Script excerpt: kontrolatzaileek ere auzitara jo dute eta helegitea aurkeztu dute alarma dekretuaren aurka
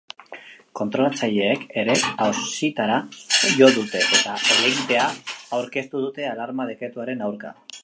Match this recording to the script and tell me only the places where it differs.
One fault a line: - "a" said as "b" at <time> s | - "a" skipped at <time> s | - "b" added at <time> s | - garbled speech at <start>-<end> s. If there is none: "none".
none